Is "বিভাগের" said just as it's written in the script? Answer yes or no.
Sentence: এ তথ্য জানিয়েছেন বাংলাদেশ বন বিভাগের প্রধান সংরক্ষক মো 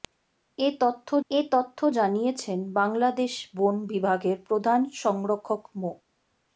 yes